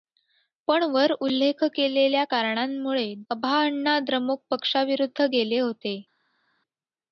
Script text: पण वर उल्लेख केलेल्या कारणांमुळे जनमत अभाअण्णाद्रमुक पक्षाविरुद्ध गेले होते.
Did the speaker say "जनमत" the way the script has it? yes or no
no